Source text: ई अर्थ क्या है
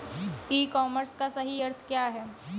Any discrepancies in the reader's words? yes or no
yes